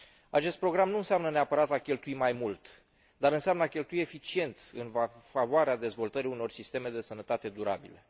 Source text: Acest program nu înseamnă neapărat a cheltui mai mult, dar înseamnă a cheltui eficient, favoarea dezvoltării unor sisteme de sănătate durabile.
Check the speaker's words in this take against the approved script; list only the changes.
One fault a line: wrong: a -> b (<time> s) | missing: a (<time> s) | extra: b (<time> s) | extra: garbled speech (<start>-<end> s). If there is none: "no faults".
extra: în (4.7 s)